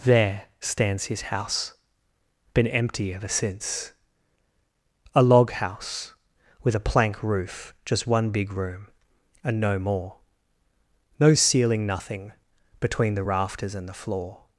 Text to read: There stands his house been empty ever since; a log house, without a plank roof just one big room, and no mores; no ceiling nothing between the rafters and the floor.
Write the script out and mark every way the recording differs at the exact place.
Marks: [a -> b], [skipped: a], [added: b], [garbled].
There stands his house been empty ever since; a log house, [without -> with] a plank roof just one big room, and no [mores; -> more] no ceiling nothing between the rafters and the floor.